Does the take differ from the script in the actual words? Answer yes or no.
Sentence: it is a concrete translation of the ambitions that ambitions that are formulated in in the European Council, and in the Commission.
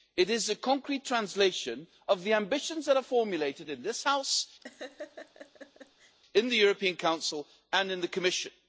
yes